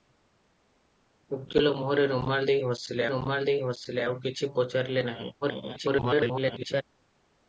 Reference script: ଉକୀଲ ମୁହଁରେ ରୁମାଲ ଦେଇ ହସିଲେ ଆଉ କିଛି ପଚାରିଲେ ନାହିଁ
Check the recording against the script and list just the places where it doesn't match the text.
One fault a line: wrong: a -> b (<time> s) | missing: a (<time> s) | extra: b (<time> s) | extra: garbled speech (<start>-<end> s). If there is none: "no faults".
extra: ରୁମାଲ ଦେଇ ହସିଲେ (3.1 s)
extra: garbled speech (5.4-6.8 s)